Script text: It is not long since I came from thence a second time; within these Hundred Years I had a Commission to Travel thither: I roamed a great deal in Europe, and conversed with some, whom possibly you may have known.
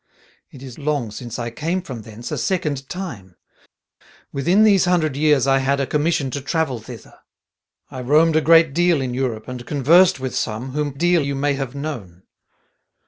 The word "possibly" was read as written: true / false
false